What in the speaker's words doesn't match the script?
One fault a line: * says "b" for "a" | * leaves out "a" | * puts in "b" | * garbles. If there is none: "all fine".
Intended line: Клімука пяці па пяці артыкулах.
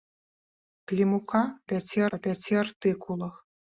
all fine